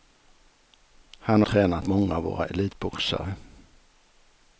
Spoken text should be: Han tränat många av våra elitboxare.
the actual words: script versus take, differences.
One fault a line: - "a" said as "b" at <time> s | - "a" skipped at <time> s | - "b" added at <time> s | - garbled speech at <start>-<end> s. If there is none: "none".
none